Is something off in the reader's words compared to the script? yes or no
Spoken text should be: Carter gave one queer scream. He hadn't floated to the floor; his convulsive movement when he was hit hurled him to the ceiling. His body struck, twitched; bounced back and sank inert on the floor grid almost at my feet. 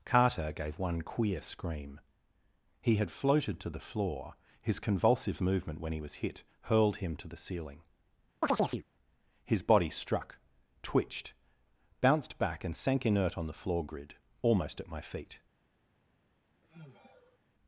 yes